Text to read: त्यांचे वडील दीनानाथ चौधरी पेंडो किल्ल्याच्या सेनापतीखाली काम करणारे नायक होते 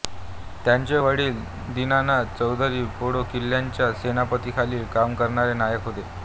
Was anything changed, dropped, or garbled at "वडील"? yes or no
no